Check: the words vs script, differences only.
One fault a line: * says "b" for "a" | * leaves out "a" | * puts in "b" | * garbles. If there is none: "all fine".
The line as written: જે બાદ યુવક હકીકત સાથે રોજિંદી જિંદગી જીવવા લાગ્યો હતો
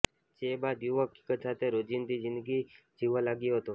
all fine